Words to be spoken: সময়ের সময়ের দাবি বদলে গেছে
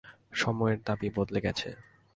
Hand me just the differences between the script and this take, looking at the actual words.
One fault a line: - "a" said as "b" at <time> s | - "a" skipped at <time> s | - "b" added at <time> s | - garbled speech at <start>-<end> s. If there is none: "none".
- "সময়ের" skipped at 0.8 s